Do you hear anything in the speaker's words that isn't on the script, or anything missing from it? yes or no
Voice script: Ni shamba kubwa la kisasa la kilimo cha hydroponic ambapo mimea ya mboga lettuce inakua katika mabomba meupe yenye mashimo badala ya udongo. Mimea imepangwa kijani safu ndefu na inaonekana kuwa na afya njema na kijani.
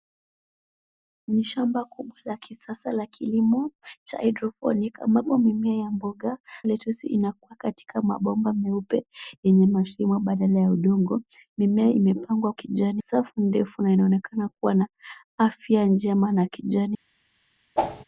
no